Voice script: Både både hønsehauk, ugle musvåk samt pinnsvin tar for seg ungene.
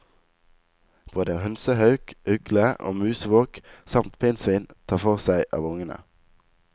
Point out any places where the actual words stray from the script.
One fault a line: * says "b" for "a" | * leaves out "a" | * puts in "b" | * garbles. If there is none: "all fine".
* leaves out "både"
* puts in "og"
* puts in "av"